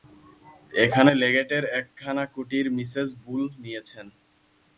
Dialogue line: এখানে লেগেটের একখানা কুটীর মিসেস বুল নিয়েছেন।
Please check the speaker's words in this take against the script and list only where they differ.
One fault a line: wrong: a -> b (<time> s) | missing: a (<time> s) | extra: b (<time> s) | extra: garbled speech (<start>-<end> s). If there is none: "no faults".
no faults